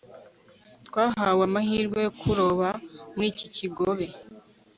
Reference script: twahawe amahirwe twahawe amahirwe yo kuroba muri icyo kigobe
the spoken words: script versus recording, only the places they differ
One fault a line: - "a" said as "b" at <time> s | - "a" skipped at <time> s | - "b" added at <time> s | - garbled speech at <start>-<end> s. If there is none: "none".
- "twahawe amahirwe" skipped at 2.0 s
- "icyo" said as "iki" at 3.3 s